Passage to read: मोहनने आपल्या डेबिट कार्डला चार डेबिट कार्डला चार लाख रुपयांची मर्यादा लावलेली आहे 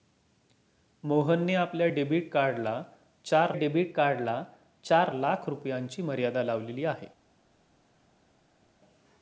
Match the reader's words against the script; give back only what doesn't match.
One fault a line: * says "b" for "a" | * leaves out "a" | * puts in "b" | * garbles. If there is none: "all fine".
all fine